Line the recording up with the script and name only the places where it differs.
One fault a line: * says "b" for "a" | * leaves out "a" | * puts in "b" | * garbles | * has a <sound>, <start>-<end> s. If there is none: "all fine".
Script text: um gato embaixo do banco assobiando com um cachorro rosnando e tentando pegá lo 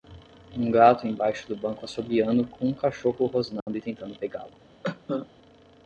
* has a dropout, 3.6-3.7 s
* has a cough, 4.8-5.3 s